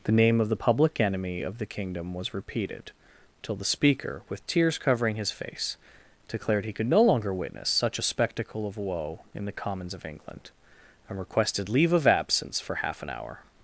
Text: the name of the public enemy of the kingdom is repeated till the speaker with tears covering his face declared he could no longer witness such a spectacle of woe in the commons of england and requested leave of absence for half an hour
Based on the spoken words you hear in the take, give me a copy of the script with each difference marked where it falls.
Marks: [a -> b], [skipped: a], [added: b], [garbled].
the name of the public enemy of the kingdom [is -> was] repeated till the speaker with tears covering his face declared he could no longer witness such a spectacle of woe in the commons of england and requested leave of absence for half an hour